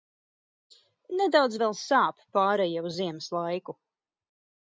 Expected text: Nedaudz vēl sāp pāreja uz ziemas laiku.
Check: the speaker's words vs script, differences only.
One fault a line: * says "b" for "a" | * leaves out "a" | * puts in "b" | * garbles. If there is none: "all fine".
all fine